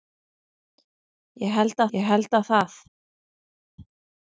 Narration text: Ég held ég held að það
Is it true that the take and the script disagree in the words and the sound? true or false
false